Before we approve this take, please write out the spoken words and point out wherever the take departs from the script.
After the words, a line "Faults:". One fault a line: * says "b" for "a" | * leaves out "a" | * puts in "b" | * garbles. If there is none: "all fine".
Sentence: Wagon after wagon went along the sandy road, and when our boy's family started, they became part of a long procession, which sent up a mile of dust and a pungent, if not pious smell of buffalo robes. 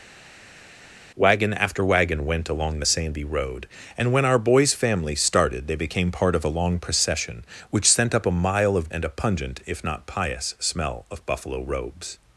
Wagon after wagon went along the sandy road, and when our boy's family started, they became part of a long procession, which sent up a mile of and a pungent, if not pious smell of buffalo robes.
Faults:
* leaves out "dust"